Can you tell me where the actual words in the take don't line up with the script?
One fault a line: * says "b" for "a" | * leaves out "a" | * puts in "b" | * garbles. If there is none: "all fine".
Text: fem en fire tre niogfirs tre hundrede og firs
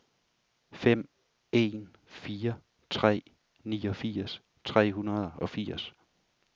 all fine